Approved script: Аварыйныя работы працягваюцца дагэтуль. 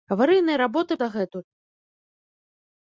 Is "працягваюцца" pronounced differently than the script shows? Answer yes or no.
yes